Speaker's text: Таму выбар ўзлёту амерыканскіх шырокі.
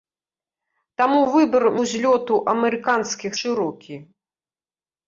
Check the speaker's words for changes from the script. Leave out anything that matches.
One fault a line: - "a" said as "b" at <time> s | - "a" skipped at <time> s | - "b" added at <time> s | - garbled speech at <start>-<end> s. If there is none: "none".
none